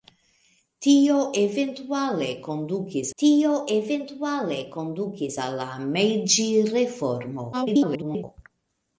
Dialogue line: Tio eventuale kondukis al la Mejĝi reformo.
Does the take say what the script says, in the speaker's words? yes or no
no